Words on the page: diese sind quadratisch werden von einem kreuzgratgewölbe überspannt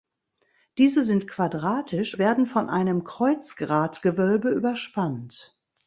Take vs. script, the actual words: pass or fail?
pass